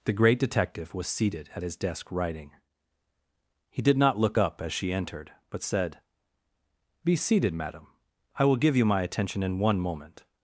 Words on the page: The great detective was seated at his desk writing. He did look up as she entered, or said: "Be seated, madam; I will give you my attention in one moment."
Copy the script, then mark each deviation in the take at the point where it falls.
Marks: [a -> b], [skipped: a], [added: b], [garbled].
The great detective was seated at his desk writing. He did [added: not] look up as she entered, [or -> but] said: "Be seated, madam; I will give you my attention in one moment."